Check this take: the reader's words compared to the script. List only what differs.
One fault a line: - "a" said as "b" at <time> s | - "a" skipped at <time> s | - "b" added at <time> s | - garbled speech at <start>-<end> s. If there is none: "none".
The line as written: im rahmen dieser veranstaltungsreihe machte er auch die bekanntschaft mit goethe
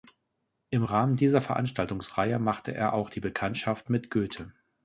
none